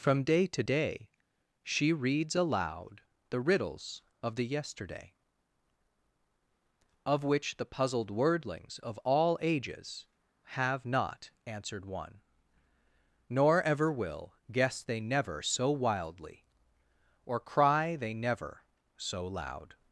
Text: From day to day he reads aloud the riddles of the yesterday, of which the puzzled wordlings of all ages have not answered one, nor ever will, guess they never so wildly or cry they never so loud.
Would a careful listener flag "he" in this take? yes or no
yes